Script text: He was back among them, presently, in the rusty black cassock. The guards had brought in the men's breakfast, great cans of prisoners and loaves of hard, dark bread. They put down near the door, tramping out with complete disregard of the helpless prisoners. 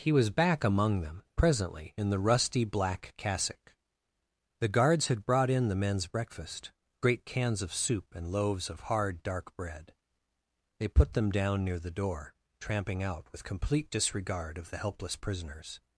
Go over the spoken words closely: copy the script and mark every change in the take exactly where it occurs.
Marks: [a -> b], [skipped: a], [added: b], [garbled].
He was back among them, presently, in the rusty black cassock. The guards had brought in the men's breakfast, great cans of [prisoners -> soup] and loaves of hard, dark bread. They put [added: them] down near the door, tramping out with complete disregard of the helpless prisoners.